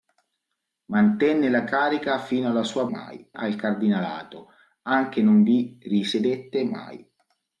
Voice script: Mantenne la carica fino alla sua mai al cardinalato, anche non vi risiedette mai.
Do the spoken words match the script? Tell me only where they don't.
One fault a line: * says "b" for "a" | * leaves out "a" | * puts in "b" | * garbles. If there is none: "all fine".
all fine